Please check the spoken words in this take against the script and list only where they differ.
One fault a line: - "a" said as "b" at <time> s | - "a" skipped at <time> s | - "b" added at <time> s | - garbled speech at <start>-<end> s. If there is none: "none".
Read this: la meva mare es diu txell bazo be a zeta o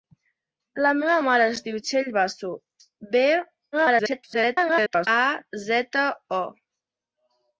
- garbled speech at 3.7-5.1 s